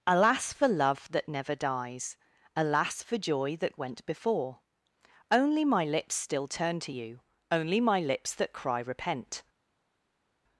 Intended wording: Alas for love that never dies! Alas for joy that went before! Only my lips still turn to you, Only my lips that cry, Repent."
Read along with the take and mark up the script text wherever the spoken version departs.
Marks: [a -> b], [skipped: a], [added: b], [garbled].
Alas for love that never dies! Alas for joy that went before! Only my lips still turn to you, Only my lips that cry, Repent."